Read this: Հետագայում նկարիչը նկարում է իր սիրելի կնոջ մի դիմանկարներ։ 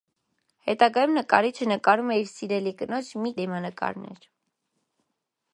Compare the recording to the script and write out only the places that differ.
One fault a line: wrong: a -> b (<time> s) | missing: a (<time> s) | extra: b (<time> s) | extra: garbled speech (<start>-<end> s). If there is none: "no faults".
no faults